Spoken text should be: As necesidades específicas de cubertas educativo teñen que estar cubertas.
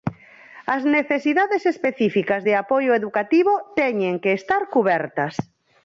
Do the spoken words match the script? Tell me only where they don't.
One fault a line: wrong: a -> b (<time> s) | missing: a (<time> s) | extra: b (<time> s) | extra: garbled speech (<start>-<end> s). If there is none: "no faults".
wrong: cubertas -> apoio (2.6 s)